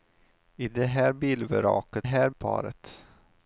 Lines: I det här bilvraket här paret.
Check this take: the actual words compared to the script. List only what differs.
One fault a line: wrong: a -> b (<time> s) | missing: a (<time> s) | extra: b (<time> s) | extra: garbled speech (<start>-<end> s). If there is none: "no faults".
no faults